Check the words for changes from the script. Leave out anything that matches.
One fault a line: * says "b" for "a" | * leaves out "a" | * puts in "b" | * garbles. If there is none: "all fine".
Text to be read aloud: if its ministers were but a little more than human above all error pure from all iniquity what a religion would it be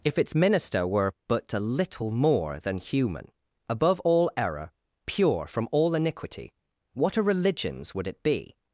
* says "minister" for "ministers"
* says "religions" for "religion"